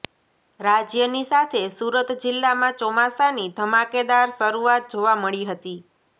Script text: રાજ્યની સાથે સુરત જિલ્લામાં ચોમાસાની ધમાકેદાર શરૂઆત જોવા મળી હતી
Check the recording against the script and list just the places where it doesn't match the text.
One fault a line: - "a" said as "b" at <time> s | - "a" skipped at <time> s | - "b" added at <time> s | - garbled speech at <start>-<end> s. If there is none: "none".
none